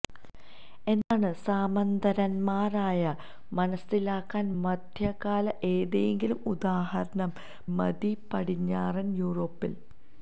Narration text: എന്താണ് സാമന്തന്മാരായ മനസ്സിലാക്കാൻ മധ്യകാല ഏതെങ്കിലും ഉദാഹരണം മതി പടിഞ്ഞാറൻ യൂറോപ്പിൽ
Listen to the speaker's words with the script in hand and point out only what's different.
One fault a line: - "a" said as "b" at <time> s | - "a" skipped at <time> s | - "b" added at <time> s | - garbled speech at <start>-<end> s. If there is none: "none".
none